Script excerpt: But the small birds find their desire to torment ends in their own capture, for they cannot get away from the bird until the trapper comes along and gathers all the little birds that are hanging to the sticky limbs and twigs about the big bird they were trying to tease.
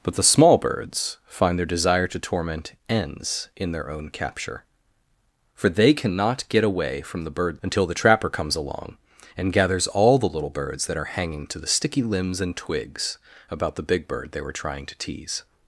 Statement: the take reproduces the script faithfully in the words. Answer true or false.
true